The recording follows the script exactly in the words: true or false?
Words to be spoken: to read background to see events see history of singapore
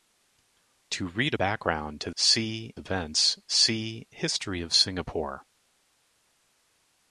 true